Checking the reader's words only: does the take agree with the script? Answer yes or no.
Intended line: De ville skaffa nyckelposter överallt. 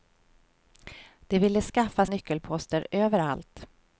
yes